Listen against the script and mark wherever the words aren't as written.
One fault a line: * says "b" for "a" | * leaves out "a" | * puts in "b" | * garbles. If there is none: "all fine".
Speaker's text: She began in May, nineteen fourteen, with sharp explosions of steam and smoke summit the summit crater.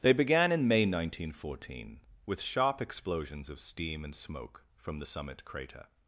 * says "They" for "She"
* says "from" for "summit"